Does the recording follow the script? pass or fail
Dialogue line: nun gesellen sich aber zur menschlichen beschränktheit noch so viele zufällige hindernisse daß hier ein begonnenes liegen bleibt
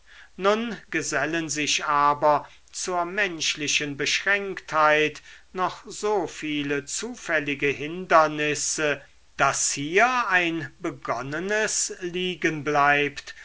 pass